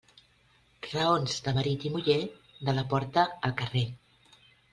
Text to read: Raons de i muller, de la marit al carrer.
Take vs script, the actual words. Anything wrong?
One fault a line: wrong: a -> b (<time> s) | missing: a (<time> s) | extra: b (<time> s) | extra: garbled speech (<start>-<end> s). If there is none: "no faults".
extra: marit (1.6 s)
wrong: marit -> porta (2.9 s)